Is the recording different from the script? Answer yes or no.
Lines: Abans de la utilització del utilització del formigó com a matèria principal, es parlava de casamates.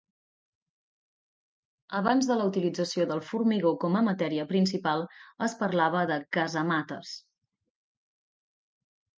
yes